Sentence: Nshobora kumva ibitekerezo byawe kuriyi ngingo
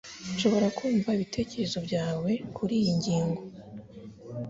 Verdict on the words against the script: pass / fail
pass